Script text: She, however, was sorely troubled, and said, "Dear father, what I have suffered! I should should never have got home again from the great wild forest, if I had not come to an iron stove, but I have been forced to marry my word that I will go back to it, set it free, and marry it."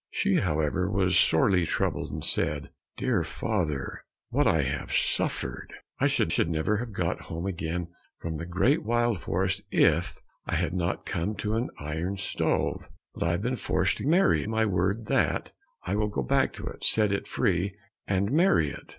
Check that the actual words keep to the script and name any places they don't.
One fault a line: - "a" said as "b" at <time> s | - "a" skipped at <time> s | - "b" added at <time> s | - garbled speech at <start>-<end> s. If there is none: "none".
none